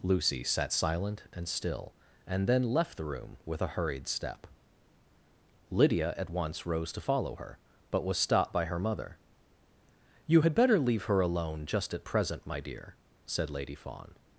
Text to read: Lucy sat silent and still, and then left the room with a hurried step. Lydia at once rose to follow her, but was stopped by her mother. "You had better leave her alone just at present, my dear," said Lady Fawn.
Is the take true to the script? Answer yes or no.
yes